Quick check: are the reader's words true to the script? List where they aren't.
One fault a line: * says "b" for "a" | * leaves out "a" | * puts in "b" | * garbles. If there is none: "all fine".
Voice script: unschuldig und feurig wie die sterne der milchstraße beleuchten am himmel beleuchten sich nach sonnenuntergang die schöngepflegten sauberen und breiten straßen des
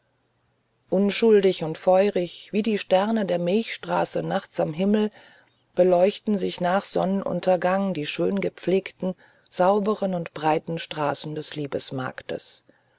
* says "nachts" for "beleuchten"